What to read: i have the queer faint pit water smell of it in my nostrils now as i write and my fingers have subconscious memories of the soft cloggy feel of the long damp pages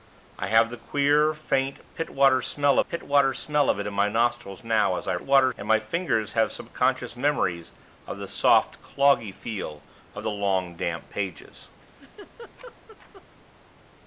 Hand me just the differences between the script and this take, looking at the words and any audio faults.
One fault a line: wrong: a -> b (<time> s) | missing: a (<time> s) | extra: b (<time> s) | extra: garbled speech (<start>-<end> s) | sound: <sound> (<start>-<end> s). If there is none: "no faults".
extra: pit water smell (2.9 s)
wrong: write -> water (5.2 s)
sound: laugh (11.8-13.2 s)